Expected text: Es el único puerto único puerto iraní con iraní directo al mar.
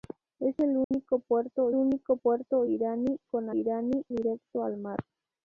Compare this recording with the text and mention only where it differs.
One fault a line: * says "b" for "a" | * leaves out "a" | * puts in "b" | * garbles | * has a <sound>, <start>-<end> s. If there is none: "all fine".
* has a dropout, 0.8-0.9 s